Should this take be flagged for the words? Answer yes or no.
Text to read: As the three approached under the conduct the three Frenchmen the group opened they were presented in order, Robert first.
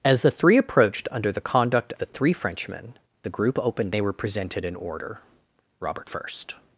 no